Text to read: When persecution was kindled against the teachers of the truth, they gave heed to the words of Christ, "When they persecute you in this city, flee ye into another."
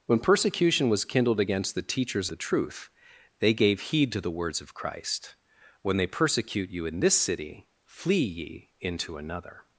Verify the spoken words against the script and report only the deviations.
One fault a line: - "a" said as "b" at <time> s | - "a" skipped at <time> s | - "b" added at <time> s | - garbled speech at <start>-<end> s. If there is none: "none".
- "of" skipped at 2.3 s